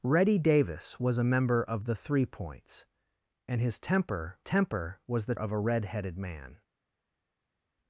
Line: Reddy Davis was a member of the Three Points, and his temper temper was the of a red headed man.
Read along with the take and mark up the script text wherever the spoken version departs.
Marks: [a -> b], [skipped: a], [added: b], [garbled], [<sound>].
Reddy Davis was a member of the Three Points, and his temper temper was the of a red headed man.